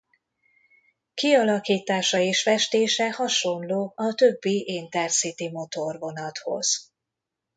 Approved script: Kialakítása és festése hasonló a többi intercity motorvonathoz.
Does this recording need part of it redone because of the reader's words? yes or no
no